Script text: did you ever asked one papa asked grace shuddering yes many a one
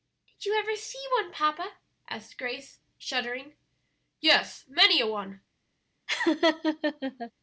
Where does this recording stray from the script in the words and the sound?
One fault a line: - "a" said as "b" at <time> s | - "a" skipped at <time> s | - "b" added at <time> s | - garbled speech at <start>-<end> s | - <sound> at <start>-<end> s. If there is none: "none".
- "asked" said as "see" at 0.8 s
- laugh at 6.1-7.3 s